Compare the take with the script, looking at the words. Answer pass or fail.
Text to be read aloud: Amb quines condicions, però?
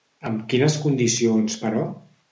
pass